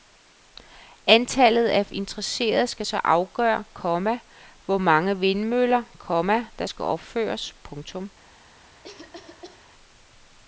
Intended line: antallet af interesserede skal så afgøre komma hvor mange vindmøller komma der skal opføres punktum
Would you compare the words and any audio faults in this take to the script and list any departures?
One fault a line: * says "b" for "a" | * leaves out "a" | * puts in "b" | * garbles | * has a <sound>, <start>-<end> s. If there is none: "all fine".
* has a cough, 8.8-9.7 s